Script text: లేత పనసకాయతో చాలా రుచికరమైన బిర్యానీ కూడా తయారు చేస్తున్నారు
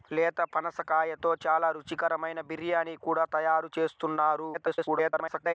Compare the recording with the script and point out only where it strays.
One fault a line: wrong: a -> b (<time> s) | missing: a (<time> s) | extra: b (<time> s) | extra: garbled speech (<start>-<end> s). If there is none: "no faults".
extra: garbled speech (4.5-5.5 s)